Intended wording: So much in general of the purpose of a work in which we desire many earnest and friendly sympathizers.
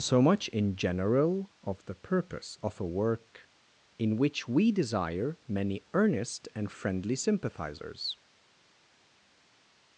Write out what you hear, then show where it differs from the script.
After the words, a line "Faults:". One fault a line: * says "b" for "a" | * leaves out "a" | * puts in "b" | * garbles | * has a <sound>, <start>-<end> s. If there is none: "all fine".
So much in general of the purpose of a work in which we desire many earnest and friendly sympathizers.
Faults:
all fine